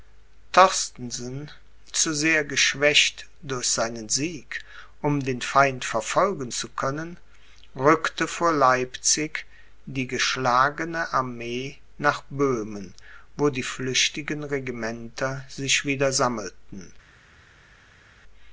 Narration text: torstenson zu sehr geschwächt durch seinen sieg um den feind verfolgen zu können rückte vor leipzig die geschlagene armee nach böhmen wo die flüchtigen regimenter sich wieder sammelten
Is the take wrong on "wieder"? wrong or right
right